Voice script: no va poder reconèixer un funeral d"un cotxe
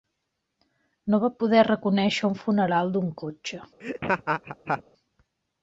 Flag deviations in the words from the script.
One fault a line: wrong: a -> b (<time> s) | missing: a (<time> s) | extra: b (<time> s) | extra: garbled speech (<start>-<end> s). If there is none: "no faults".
no faults